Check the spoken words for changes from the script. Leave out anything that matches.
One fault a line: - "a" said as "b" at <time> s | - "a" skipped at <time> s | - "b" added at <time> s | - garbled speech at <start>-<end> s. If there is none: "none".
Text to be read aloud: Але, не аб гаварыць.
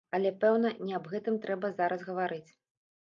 - "пэўна" added at 0.4 s
- "гэтым трэба зараз" added at 1.1 s